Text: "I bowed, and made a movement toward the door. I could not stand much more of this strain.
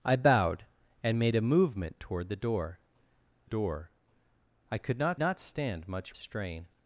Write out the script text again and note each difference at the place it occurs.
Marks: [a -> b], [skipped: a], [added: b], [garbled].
"I bowed, and made a movement toward the door. [added: door] I could not [added: not] stand much [skipped: more of this] strain.